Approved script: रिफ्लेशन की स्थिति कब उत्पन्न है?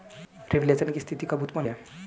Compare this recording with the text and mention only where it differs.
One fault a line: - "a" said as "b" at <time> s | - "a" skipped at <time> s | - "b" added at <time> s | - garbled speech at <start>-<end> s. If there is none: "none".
none